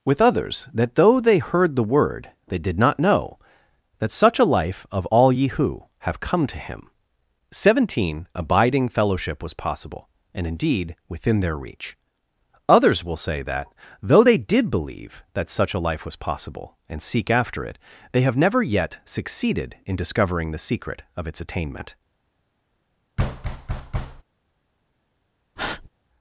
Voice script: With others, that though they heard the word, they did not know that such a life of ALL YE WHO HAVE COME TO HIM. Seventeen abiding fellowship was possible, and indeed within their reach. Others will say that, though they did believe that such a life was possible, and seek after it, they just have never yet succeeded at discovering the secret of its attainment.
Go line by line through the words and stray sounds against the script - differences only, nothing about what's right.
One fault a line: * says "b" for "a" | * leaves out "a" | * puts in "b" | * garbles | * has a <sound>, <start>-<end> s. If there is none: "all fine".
* leaves out "just"
* says "in" for "at"
* has a thud, 23.2-24.2 s
* has a breath, 25.6-25.9 s